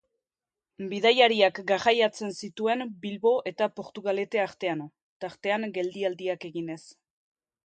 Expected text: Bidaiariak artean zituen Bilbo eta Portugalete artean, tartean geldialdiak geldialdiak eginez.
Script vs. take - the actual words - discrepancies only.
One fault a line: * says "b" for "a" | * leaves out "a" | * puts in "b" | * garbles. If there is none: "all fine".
* says "garraiatzen" for "artean"
* leaves out "geldialdiak"